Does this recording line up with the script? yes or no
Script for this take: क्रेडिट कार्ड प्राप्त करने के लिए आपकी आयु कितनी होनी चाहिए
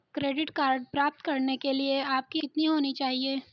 no